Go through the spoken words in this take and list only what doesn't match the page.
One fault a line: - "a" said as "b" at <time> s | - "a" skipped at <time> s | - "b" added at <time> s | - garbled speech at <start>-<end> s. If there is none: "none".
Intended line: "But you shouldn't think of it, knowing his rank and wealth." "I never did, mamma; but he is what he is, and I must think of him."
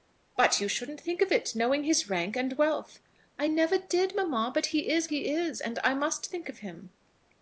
- "what" skipped at 5.1 s